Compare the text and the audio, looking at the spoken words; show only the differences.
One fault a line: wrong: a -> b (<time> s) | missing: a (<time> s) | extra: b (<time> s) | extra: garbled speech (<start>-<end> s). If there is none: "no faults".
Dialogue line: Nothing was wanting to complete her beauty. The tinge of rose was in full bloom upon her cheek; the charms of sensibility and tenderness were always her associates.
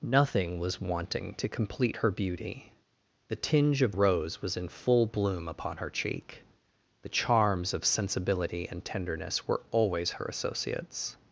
no faults